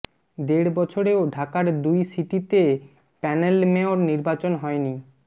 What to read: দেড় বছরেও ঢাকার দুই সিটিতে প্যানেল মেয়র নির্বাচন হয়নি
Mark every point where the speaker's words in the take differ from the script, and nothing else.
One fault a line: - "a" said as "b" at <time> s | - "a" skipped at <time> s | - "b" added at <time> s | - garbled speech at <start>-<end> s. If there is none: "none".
none